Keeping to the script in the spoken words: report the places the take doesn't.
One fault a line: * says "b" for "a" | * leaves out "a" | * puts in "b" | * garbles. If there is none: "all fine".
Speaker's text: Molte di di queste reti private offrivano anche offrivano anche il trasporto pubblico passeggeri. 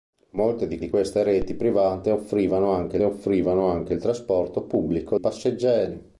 all fine